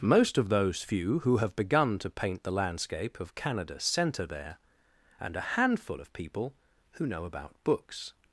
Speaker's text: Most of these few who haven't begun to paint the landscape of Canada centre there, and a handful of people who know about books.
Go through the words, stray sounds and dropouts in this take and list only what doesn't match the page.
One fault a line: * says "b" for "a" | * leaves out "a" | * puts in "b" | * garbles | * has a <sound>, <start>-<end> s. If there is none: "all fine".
* says "those" for "these"
* says "have" for "haven't"